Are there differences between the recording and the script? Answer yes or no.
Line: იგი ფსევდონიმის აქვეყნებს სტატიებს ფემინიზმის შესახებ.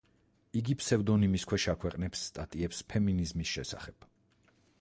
yes